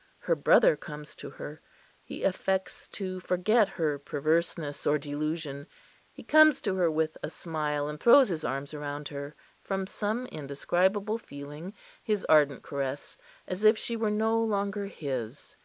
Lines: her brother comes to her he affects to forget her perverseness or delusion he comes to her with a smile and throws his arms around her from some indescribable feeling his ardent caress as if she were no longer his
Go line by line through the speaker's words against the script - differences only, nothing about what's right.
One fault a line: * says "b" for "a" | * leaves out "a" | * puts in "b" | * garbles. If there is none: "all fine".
all fine